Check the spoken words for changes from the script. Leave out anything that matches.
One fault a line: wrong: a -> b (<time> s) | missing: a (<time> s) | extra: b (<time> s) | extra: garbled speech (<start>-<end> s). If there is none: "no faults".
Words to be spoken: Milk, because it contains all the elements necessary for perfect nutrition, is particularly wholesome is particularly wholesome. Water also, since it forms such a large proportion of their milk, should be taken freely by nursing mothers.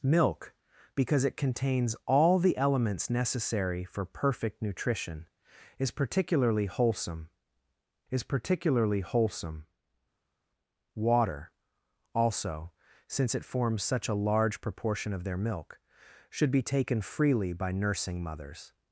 no faults